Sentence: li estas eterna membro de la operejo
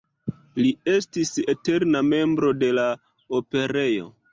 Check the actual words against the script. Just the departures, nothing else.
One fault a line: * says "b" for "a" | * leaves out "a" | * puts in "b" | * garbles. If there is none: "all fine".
* says "estis" for "estas"